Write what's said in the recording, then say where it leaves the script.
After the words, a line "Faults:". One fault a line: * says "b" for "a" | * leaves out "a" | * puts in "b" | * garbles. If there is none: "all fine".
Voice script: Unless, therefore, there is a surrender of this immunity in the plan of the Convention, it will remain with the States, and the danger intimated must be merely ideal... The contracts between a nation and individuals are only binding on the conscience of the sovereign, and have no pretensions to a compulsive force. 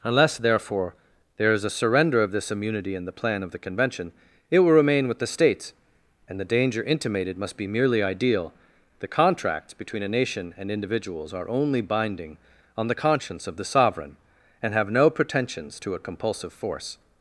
Unless, therefore, there is a surrender of this immunity in the plan of the Convention, it will remain with the States, and the danger intimated must be merely ideal... The contracts between a nation and individuals are only binding on the conscience of the sovereign, and have no pretensions to a compulsive force.
Faults:
all fine